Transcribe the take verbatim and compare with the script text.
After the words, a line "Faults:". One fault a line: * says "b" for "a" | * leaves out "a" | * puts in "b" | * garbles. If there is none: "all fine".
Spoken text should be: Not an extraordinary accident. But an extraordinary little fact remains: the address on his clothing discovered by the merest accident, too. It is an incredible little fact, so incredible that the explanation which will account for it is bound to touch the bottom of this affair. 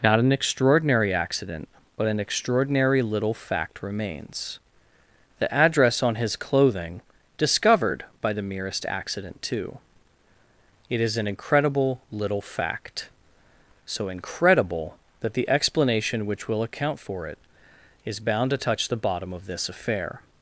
Not an extraordinary accident. But an extraordinary little fact remains: the address on his clothing discovered by the merest accident, too. It is an incredible little fact, so incredible that the explanation which will account for it is bound to touch the bottom of this affair.
Faults:
all fine